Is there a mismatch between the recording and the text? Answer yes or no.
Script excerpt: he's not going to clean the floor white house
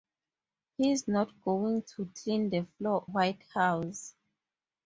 no